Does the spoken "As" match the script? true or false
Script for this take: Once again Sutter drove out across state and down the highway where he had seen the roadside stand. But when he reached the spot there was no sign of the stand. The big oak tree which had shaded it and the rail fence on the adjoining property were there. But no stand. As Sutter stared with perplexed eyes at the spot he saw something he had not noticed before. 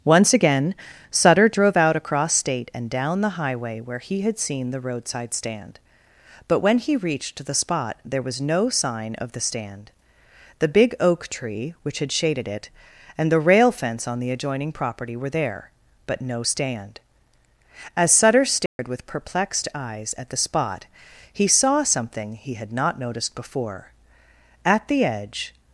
true